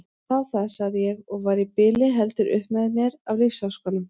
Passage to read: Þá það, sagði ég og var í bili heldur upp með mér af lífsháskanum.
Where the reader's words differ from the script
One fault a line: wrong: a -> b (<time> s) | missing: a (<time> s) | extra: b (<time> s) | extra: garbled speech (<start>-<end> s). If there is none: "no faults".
no faults